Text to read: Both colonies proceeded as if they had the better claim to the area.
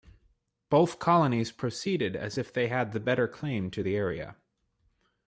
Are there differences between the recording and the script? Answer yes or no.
no